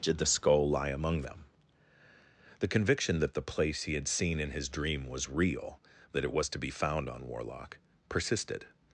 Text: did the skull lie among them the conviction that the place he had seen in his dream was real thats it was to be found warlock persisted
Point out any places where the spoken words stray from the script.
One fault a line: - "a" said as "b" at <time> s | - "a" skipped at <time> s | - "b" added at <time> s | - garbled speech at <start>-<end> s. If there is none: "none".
- "thats" said as "that" at 6.1 s
- "on" added at 7.1 s